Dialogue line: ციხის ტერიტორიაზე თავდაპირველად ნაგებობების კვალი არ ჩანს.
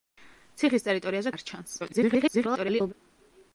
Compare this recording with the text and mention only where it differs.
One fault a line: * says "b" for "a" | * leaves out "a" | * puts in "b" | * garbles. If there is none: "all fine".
* leaves out "თავდაპირველად ნაგებობების კვალი"
* garbles